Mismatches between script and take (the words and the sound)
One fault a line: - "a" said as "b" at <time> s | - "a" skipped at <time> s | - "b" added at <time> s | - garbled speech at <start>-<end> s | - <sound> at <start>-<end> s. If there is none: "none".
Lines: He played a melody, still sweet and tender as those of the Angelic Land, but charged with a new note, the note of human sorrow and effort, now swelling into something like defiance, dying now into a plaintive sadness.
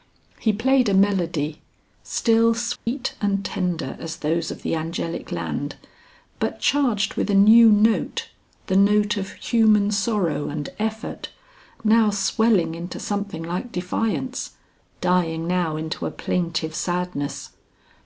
- dropout at 2.8-2.9 s